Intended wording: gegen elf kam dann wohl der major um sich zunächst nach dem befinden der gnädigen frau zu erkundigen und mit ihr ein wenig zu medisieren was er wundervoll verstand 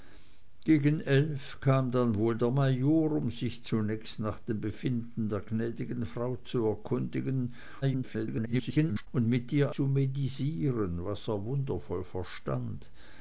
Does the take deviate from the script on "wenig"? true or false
true